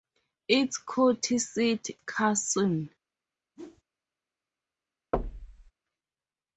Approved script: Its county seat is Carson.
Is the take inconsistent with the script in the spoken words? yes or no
yes